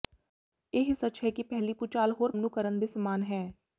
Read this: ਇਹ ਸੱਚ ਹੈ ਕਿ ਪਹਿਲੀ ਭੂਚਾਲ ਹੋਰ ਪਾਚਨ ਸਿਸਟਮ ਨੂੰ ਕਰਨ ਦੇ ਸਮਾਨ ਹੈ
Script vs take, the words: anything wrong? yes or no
yes